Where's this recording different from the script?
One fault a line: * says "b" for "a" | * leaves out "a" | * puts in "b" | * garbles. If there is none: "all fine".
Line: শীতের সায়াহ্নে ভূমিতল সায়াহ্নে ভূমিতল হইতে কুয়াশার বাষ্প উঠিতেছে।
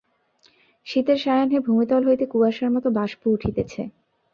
* leaves out "সায়াহ্নে ভূমিতল"
* puts in "মতো"